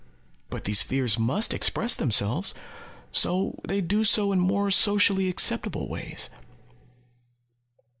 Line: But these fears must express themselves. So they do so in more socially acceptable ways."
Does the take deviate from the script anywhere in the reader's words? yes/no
no